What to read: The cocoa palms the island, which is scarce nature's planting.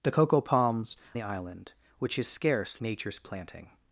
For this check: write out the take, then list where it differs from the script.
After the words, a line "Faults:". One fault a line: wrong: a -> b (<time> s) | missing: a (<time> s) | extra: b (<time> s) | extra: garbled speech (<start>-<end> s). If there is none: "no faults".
The cocoa palms the island, which is scarce nature's planting.
Faults:
no faults